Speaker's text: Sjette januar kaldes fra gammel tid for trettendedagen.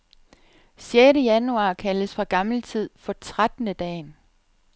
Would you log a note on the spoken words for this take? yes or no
no